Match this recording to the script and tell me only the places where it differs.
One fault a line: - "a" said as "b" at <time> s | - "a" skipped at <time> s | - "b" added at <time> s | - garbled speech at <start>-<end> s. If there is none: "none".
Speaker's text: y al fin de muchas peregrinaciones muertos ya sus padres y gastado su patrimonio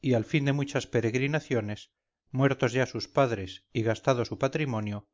none